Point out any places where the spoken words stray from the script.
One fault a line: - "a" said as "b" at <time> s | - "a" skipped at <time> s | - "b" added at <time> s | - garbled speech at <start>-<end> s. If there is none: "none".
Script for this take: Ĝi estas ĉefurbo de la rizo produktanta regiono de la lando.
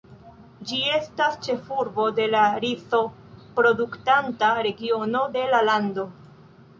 none